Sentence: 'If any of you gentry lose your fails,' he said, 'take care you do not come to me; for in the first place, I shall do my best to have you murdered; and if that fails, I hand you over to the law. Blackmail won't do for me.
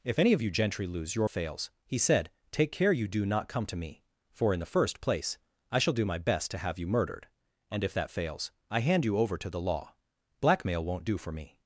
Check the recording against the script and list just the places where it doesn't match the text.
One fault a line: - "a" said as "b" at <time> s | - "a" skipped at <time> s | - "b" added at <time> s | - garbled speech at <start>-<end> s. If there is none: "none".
none